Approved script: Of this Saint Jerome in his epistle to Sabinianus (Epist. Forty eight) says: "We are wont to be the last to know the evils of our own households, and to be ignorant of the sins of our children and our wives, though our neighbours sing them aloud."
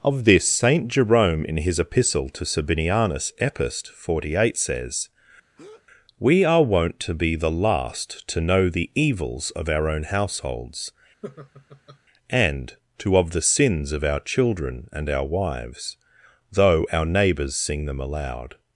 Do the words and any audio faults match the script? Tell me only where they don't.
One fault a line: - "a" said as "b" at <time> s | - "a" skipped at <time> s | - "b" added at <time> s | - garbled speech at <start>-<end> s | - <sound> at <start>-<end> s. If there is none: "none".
- breath at 5.6-5.9 s
- laugh at 11.2-12.0 s
- "be ignorant" skipped at 13.2 s